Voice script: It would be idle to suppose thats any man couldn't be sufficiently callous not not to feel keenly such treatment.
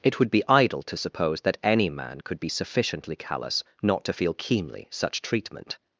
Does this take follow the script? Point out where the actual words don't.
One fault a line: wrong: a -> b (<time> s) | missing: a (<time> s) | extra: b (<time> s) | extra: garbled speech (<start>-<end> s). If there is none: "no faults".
wrong: thats -> that (1.4 s)
wrong: couldn't -> could (2.2 s)
missing: not (4.0 s)